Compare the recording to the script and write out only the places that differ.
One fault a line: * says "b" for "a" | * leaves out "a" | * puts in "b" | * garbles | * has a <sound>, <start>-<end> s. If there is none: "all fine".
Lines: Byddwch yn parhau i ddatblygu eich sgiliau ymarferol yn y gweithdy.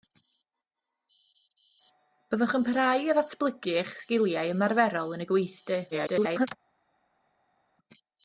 * garbles